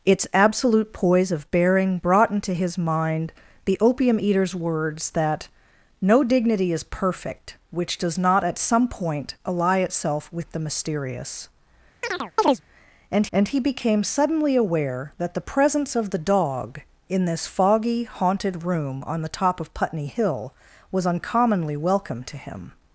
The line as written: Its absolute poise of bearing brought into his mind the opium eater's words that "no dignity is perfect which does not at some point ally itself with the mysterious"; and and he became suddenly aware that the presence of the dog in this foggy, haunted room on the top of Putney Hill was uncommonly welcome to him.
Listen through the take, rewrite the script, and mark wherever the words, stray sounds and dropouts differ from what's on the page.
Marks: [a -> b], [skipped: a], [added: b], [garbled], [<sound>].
Its absolute poise of bearing brought into his mind the opium eater's words that "no dignity is perfect which does not at some point ally itself with the mysterious"; [chirp] and and he became suddenly aware that the presence of the dog in this foggy, haunted room on the top of Putney Hill was uncommonly welcome to him.